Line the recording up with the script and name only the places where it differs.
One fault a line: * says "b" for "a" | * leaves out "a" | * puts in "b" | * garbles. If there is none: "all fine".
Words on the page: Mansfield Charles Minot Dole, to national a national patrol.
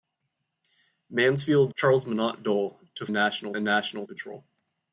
all fine